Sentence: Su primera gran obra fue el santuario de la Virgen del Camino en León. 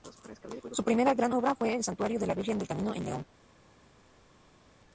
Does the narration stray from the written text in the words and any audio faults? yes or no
no